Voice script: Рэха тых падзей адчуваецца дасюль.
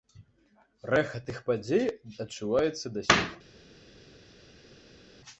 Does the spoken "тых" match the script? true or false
true